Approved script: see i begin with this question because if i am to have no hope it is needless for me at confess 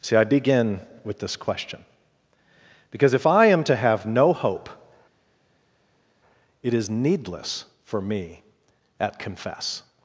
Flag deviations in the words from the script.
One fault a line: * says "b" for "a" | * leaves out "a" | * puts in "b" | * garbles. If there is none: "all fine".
all fine